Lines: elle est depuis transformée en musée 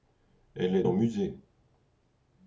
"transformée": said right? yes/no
no